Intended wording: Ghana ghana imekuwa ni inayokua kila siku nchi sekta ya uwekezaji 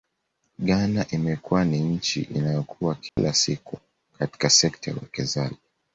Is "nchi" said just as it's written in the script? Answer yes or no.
no